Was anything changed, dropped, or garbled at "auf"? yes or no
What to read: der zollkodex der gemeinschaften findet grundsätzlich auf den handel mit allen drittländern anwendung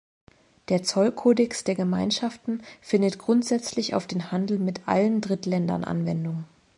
no